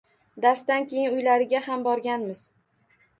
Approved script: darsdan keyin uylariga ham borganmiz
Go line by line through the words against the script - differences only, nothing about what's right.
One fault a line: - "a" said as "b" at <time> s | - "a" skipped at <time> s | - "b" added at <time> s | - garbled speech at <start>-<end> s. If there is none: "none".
none